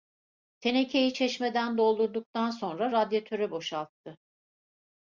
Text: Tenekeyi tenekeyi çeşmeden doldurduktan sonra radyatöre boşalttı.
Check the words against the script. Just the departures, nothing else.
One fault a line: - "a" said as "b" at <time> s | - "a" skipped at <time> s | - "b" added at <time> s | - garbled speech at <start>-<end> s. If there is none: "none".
- "tenekeyi" skipped at 1.1 s